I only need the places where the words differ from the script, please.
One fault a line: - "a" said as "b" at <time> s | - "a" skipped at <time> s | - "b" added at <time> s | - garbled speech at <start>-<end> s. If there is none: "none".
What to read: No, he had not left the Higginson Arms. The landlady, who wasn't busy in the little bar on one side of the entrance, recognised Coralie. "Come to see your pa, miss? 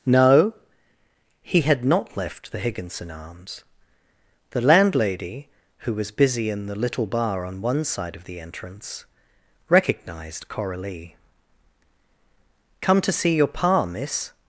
- "wasn't" said as "was" at 5.9 s